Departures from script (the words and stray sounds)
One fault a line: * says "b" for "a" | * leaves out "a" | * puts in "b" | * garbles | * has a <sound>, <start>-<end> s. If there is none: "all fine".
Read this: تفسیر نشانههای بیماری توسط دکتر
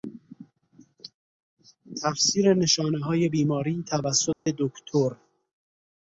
* has a dropout, 4.3-4.5 s